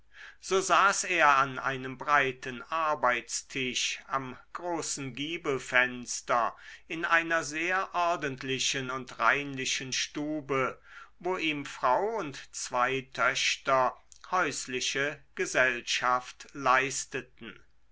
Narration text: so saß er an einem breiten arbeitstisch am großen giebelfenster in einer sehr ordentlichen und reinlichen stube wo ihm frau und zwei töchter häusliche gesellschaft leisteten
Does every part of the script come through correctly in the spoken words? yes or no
yes